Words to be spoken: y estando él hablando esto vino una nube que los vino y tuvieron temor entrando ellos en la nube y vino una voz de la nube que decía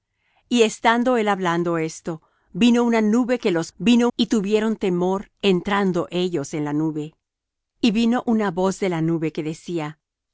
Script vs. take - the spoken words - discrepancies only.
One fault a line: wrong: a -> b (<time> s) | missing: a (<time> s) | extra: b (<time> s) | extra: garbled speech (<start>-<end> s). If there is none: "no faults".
no faults